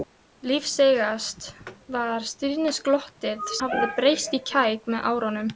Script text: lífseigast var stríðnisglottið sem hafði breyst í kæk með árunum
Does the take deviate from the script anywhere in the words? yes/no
yes